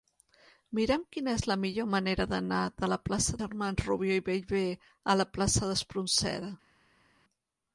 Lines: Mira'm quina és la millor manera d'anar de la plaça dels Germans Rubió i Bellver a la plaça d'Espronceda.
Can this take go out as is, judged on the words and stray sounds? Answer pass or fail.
fail